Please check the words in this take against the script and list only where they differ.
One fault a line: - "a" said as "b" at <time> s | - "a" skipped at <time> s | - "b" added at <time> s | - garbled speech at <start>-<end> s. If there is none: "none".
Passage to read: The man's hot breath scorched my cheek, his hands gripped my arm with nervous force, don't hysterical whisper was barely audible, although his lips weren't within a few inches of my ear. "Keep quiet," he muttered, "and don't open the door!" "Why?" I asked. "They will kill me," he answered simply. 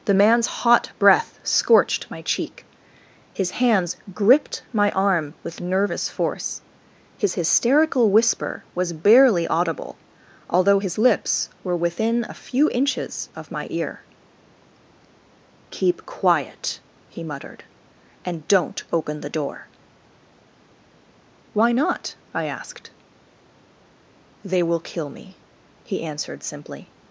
- "don't" said as "his" at 7.2 s
- "weren't" said as "were" at 11.6 s
- "not" added at 21.7 s